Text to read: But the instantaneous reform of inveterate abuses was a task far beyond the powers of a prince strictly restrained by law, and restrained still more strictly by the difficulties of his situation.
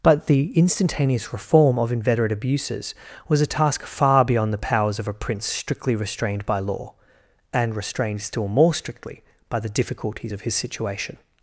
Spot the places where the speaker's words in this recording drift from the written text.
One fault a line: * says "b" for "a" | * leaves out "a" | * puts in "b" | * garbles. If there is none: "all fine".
all fine